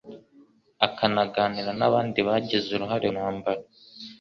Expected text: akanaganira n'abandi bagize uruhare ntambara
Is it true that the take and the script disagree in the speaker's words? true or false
false